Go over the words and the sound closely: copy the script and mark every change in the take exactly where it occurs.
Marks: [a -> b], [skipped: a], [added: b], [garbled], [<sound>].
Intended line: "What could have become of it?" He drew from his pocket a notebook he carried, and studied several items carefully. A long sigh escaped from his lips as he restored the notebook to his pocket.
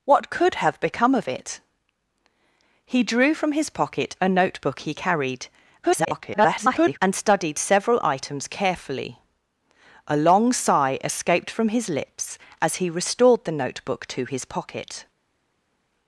"What could have become of it?" He drew from his pocket a notebook he carried, [garbled] and studied several items carefully. A long sigh escaped from his lips as he restored the notebook to his pocket.